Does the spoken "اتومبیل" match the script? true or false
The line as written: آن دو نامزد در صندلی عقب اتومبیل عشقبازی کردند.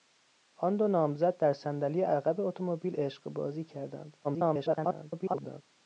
true